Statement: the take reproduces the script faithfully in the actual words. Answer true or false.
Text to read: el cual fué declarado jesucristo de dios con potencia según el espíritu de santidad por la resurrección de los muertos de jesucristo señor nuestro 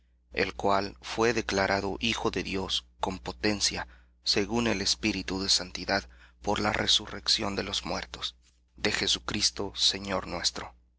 false